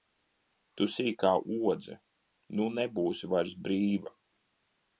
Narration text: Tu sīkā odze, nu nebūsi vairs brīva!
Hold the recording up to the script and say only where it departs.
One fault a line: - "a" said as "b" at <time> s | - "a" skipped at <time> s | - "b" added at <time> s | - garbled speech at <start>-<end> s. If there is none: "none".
none